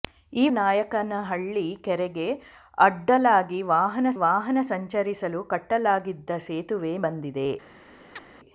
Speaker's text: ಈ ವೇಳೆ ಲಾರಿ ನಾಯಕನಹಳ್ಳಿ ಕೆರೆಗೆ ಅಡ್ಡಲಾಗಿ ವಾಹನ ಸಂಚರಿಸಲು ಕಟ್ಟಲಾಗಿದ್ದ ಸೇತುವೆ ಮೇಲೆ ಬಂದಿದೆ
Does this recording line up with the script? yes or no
no